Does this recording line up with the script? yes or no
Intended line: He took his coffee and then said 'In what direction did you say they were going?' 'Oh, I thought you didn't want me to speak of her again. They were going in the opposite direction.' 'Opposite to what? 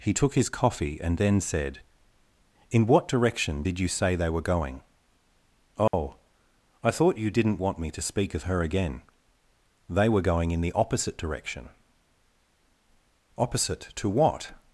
yes